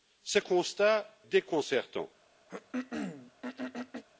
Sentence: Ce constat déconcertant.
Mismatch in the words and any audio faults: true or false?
true